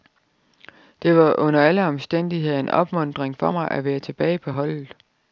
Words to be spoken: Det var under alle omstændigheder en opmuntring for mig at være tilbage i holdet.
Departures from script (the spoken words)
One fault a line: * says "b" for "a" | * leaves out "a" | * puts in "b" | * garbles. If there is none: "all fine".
* says "på" for "i"